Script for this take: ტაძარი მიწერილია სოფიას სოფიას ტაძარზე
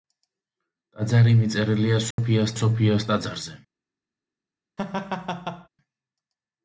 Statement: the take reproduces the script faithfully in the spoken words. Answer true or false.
true